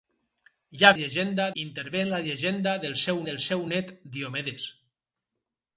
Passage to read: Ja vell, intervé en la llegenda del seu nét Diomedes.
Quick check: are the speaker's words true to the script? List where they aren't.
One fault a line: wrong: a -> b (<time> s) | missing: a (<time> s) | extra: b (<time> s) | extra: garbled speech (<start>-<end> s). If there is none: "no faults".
wrong: vell -> llegenda (1.0 s)
extra: del seu (3.3 s)